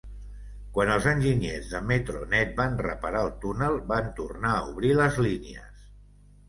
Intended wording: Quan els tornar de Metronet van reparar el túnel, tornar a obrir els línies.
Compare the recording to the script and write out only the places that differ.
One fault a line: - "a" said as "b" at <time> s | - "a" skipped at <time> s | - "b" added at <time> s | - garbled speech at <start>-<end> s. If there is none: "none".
- "tornar" said as "enginyers" at 1.1 s
- "van" added at 3.9 s
- "els" said as "les" at 5.0 s